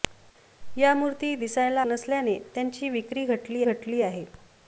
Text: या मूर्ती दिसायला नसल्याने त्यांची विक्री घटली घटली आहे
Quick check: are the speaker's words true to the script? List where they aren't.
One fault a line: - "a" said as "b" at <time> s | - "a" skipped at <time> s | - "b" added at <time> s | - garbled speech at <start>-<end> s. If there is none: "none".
none